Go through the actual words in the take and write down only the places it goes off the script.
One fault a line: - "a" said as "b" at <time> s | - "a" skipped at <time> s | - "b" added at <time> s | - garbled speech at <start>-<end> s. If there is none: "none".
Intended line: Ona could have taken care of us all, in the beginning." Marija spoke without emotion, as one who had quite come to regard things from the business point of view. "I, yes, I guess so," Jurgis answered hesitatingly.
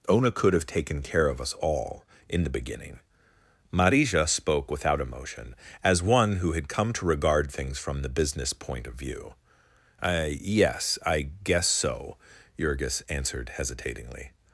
- "quite" skipped at 6.7 s